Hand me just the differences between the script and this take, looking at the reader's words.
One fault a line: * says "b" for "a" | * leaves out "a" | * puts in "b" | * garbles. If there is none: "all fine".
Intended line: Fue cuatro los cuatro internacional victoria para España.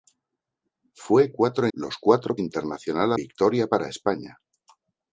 all fine